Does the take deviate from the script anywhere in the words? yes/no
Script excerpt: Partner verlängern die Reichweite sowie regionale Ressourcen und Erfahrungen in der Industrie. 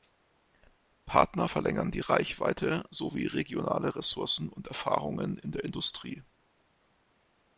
no